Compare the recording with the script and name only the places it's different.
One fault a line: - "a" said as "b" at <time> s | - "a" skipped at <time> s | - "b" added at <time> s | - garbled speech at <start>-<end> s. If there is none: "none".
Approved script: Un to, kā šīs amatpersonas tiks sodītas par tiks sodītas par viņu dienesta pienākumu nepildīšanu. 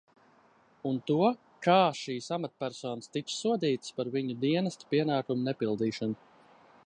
- "tiks sodītas par" skipped at 4.1 s